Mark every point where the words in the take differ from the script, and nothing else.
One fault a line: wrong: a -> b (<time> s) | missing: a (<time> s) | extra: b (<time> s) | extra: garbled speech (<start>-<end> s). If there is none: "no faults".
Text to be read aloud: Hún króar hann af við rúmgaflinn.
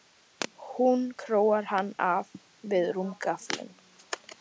no faults